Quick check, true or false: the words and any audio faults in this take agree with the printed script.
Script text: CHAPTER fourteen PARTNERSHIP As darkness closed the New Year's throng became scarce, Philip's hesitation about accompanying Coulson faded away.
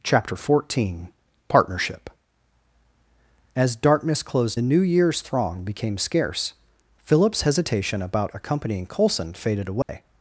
false